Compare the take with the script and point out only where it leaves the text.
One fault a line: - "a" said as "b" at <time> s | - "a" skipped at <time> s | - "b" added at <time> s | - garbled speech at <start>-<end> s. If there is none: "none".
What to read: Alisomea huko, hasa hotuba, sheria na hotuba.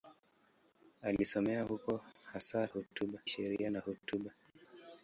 none